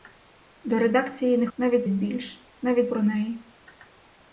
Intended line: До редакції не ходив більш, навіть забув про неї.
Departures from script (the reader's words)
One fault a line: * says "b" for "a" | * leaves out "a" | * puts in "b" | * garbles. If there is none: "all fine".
* says "навіть" for "ходив"
* leaves out "забув"